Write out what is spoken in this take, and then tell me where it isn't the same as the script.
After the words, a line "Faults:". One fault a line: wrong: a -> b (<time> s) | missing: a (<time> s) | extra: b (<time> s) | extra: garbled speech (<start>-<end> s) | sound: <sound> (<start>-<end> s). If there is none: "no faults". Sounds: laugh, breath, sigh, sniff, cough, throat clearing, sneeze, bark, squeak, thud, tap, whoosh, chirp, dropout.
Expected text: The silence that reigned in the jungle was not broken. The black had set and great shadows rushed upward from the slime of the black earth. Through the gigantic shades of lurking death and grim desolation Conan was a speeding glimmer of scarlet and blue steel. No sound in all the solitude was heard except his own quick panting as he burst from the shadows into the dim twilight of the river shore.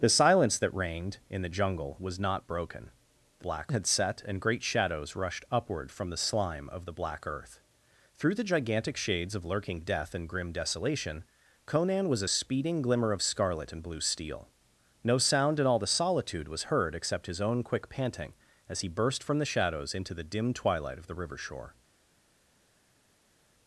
The silence that reigned in the jungle was not broken. The black had set and great shadows rushed upward from the slime of the black earth. Through the gigantic shades of lurking death and grim desolation Conan was a speeding glimmer of scarlet and blue steel. No sound in all the solitude was heard except his own quick panting as he burst from the shadows into the dim twilight of the river shore.
Faults:
no faults